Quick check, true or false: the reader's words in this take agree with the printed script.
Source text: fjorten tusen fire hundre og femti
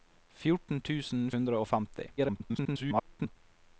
false